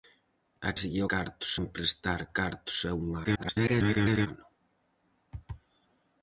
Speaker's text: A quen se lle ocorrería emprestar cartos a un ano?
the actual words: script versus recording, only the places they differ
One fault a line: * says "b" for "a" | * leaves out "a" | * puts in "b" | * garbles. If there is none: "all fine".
* leaves out "quen"
* says "cartos" for "ocorrería"
* garbles